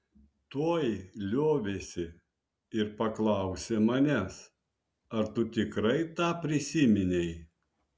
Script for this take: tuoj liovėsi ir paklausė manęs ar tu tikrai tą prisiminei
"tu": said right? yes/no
yes